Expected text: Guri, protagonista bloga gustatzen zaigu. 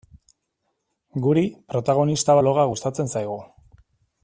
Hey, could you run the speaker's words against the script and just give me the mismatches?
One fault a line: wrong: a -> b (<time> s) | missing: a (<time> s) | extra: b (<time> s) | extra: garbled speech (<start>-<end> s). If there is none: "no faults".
no faults